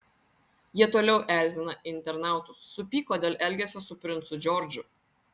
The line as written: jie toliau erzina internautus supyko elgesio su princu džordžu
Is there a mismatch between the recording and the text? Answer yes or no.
yes